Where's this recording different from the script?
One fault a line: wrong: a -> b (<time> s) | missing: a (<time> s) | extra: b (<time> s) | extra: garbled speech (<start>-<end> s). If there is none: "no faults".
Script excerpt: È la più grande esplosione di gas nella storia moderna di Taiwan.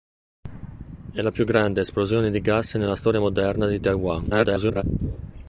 extra: garbled speech (4.3-4.8 s)